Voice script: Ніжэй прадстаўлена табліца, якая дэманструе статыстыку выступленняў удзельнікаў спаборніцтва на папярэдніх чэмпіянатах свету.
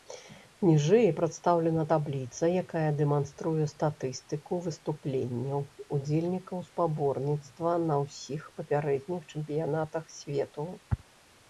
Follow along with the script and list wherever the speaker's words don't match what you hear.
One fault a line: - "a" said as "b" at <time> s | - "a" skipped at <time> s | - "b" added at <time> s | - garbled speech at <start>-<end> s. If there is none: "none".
- "ўсіх" added at 8.0 s